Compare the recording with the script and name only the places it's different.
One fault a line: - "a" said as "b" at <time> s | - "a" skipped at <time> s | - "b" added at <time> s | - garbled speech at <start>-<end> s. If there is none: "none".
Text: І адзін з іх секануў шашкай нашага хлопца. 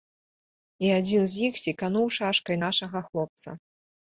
none